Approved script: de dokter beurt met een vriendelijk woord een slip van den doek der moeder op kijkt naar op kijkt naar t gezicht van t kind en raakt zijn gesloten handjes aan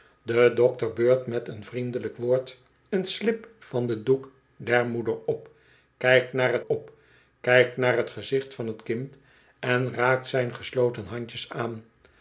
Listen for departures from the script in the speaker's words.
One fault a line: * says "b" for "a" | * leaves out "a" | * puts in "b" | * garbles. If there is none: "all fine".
all fine